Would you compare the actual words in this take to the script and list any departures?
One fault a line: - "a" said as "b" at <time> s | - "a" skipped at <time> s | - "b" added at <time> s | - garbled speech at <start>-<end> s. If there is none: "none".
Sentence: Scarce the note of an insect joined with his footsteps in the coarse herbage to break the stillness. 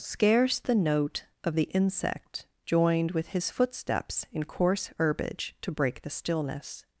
- "an" said as "the" at 1.5 s
- "the" skipped at 4.5 s